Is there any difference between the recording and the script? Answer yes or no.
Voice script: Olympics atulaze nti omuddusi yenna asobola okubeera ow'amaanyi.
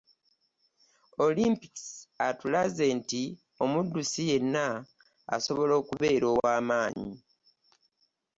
no